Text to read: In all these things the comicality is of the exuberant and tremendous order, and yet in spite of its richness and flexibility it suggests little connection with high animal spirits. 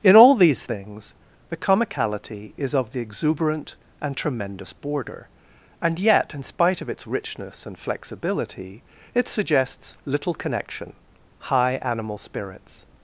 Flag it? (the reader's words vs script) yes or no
yes